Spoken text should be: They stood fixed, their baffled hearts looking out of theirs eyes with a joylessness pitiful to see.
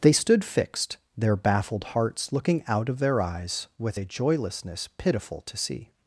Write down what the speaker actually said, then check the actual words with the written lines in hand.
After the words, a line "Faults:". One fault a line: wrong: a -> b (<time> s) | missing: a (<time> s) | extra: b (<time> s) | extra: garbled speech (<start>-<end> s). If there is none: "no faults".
They stood fixed, their baffled hearts looking out of their eyes with a joylessness pitiful to see.
Faults:
wrong: theirs -> their (3.0 s)